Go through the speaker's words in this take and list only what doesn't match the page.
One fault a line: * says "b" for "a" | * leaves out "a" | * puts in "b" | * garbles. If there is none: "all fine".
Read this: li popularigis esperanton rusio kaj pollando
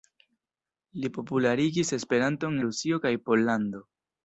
all fine